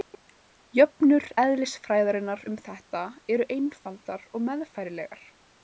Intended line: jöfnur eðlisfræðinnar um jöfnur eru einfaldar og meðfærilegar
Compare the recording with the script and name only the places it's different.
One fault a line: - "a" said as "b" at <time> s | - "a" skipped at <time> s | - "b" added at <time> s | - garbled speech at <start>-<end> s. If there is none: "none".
- "jöfnur" said as "þetta" at 2.7 s